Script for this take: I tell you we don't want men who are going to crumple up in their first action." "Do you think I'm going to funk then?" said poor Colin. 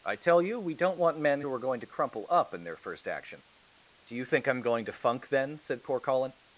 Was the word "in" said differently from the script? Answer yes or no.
no